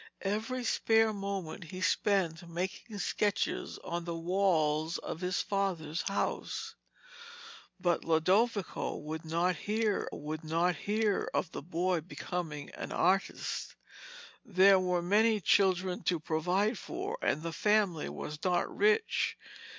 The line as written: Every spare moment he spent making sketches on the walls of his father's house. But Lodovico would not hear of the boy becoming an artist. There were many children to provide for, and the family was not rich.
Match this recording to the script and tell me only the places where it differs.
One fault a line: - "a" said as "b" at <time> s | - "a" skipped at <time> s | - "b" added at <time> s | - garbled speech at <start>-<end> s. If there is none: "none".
- "would not hear" added at 10.1 s